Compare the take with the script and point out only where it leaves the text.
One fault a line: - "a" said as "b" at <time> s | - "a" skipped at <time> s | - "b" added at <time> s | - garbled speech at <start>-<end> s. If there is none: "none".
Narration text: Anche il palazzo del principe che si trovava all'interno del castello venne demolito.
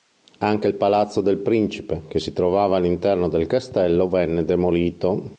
none